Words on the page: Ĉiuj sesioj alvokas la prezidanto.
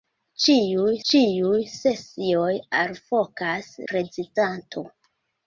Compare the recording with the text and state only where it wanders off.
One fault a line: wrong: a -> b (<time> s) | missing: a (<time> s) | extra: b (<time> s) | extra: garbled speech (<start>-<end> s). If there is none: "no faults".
extra: ĉiuj (1.1 s)
missing: la (3.7 s)